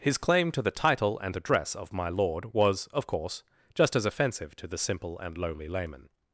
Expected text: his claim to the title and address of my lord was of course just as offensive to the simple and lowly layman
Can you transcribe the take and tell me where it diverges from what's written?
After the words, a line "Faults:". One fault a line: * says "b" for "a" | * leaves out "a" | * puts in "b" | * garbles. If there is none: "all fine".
his claim to the title and address of my lord was of course just as offensive to the simple and lowly layman
Faults:
all fine